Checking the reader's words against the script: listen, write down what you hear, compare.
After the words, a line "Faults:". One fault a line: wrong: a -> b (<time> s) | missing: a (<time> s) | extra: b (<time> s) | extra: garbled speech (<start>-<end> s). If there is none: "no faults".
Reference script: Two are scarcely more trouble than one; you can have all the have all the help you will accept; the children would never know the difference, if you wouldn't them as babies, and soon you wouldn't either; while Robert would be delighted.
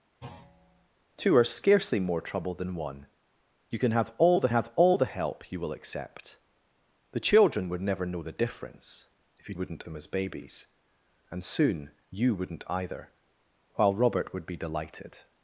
Two are scarcely more trouble than one; you can have all the have all the help you will accept; the children would never know the difference, if you wouldn't them as babies, and soon you wouldn't either; while Robert would be delighted.
Faults:
no faults